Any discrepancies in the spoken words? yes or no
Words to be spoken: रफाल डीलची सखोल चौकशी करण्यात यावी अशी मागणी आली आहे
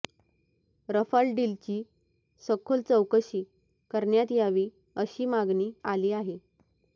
no